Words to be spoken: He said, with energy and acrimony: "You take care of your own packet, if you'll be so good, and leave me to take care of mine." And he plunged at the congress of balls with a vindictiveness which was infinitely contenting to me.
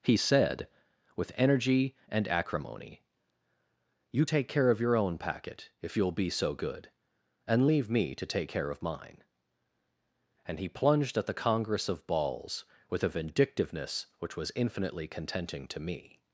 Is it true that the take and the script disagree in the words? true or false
false